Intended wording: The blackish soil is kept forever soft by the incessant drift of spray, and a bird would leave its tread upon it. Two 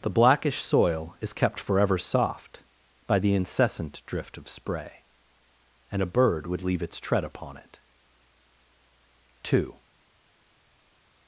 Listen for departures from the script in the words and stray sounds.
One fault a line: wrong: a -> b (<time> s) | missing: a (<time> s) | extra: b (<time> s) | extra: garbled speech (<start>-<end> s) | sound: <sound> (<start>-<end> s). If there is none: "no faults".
no faults